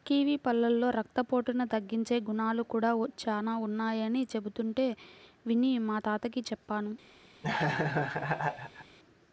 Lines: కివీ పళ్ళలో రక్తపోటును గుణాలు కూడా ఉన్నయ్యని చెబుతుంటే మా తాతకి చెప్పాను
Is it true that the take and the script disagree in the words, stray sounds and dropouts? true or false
true